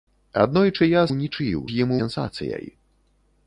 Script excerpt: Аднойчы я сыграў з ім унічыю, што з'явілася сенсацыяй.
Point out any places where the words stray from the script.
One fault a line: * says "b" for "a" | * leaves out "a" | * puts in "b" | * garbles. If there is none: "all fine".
* says "унічыю" for "сыграў"
* leaves out "унічыю што з'явілася"